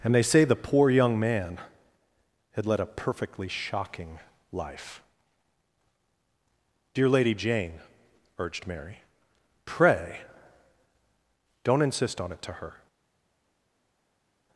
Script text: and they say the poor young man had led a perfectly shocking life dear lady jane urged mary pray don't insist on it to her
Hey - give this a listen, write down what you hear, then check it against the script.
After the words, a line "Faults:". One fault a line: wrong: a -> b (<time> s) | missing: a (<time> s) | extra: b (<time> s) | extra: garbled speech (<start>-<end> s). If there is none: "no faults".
and they say the poor young man had led a perfectly shocking life dear lady jane urged mary pray don't insist on it to her
Faults:
no faults